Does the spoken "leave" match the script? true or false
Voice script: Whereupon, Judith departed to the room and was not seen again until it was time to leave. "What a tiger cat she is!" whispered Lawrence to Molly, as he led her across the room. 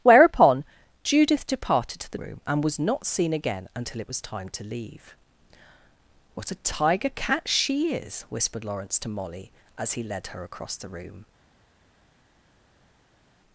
true